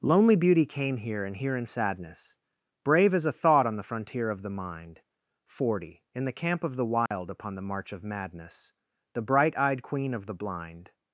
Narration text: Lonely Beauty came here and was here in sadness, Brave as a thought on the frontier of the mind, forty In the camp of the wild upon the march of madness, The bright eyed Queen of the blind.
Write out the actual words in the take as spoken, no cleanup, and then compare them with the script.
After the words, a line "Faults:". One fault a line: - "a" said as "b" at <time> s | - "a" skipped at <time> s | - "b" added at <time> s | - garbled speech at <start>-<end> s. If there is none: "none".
Lonely Beauty came here and here in sadness, Brave as a thought on the frontier of the mind, forty In the camp of the wild upon the march of madness, The bright eyed Queen of the blind.
Faults:
- "was" skipped at 1.4 s